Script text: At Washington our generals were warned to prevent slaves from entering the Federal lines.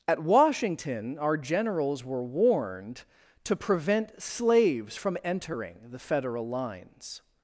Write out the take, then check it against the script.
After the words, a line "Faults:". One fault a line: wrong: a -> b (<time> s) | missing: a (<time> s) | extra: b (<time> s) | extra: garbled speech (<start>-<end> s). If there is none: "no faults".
At Washington our generals were warned to prevent slaves from entering the Federal lines.
Faults:
no faults